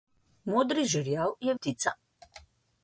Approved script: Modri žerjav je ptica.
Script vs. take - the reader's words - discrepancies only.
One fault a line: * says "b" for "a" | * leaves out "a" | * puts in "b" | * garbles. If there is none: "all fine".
all fine